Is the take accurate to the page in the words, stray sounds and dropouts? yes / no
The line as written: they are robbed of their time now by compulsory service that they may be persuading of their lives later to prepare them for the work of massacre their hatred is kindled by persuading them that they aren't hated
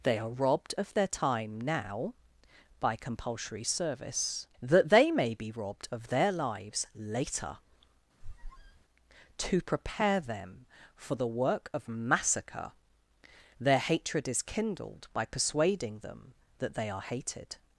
no